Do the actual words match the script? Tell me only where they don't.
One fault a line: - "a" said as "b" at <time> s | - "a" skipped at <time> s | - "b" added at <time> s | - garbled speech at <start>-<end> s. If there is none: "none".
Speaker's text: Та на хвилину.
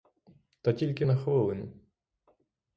- "тільки" added at 0.7 s